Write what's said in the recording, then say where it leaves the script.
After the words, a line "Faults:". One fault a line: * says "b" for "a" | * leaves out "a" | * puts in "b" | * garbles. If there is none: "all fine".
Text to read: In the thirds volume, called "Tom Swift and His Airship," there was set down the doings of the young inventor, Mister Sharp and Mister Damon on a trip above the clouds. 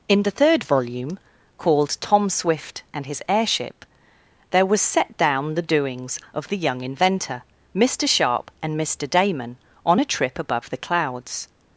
In the third volume, called "Tom Swift and His Airship," there was set down the doings of the young inventor, Mister Sharp and Mister Damon on a trip above the clouds.
Faults:
* says "third" for "thirds"